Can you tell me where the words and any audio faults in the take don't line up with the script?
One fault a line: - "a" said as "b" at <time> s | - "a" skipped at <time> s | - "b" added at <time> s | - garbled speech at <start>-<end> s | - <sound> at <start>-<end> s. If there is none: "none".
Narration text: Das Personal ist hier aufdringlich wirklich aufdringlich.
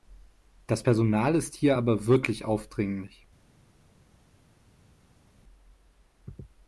- "aufdringlich" said as "aber" at 1.7 s